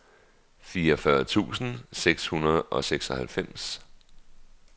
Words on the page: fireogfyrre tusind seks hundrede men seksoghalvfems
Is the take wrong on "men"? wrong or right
wrong